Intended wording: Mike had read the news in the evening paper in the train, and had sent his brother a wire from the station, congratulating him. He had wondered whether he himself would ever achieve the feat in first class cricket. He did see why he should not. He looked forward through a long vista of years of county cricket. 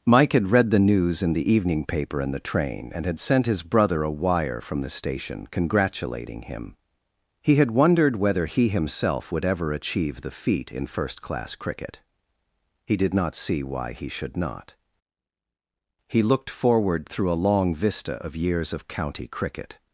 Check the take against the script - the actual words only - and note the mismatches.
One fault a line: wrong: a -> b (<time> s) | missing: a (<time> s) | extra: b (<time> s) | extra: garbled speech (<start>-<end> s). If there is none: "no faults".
extra: not (13.1 s)